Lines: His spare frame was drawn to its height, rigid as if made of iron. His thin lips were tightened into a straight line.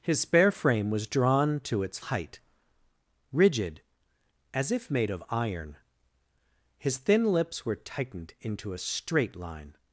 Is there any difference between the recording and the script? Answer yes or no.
no